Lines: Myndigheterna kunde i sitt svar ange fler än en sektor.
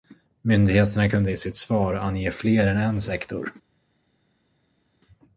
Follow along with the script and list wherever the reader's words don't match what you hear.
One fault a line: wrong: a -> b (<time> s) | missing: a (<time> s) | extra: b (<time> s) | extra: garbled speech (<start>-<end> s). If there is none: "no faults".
no faults